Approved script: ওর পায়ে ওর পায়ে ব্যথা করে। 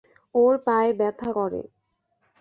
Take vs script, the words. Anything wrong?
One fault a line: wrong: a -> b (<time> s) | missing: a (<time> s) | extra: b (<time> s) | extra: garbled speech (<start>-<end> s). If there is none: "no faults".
missing: ওর পায়ে (0.9 s)